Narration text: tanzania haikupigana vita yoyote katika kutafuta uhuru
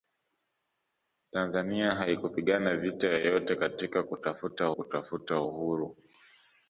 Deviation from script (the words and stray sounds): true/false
true